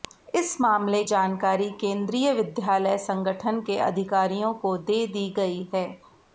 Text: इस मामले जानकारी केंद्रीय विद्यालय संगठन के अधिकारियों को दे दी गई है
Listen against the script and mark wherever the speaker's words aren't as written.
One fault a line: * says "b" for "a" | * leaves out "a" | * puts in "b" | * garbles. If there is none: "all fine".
all fine